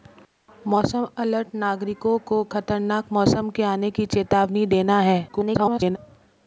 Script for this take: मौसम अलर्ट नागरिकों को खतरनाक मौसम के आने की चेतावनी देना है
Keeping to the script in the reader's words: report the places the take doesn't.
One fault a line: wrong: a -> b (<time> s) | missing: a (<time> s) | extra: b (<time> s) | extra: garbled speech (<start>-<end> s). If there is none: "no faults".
extra: garbled speech (5.3-6.0 s)